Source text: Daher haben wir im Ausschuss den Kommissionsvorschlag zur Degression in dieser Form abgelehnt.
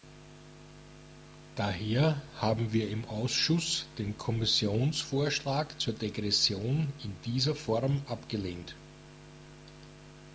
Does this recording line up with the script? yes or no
yes